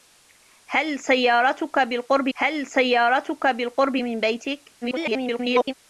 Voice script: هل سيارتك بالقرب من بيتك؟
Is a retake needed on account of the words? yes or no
yes